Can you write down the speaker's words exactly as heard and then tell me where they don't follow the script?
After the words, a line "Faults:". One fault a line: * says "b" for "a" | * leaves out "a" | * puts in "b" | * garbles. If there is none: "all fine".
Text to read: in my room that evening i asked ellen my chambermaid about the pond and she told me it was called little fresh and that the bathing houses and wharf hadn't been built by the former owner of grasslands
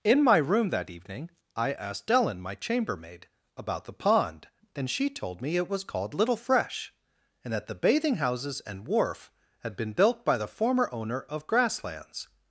in my room that evening i asked ellen my chambermaid about the pond and she told me it was called little fresh and that the bathing houses and wharf had been built by the former owner of grasslands
Faults:
* says "had" for "hadn't"